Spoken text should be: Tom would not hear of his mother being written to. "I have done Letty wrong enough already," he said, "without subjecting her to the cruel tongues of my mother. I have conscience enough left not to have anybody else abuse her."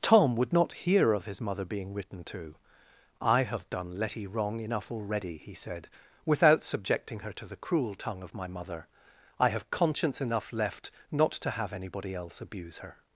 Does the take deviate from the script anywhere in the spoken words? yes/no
yes